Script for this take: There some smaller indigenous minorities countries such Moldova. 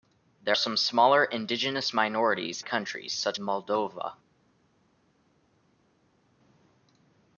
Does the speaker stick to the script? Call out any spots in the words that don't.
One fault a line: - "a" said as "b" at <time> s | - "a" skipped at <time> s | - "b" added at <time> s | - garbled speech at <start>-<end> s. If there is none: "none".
none